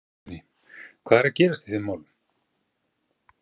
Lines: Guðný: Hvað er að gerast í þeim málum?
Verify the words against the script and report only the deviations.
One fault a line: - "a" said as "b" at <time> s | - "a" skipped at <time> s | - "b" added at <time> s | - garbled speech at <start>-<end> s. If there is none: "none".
none